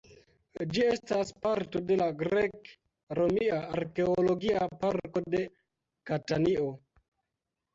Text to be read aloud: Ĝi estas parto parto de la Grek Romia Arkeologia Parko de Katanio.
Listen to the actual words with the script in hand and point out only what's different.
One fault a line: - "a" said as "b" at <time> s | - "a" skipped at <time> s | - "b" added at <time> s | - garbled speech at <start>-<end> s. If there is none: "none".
- "parto" skipped at 1.8 s